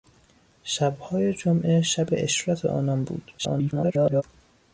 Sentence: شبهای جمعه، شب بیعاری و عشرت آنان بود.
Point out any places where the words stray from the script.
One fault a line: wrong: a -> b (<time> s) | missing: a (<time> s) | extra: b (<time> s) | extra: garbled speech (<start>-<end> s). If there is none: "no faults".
missing: بیعاری (2.1 s)
extra: garbled speech (3.4-4.2 s)